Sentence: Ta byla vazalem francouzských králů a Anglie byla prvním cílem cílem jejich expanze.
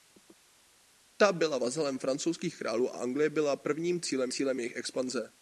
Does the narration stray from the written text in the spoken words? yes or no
no